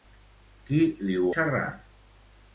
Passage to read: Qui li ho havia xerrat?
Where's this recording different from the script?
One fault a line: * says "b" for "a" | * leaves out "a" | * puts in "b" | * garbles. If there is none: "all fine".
* leaves out "havia"